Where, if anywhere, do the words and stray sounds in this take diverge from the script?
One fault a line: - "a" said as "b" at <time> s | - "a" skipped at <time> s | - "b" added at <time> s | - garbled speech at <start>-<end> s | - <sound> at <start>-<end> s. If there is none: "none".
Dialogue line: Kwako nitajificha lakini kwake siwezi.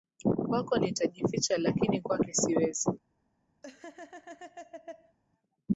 - laugh at 3.6-5.2 s